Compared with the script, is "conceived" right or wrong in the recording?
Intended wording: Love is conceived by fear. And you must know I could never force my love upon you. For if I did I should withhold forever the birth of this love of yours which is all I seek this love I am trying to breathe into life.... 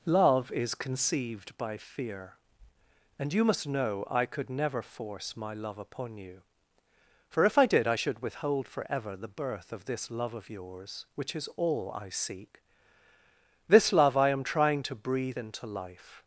right